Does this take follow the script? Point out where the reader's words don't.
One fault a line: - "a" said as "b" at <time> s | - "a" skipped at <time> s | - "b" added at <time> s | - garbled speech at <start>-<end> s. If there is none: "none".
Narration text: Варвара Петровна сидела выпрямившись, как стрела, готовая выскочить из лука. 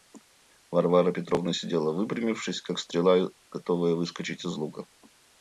none